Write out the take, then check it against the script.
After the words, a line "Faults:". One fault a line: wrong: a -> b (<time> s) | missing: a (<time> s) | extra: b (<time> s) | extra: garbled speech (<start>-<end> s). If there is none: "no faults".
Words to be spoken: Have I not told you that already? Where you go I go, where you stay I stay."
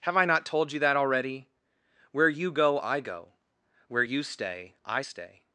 Have I not told you that already? Where you go I go, where you stay I stay."
Faults:
no faults